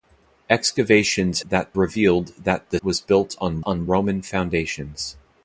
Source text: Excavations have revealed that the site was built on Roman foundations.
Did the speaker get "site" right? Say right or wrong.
wrong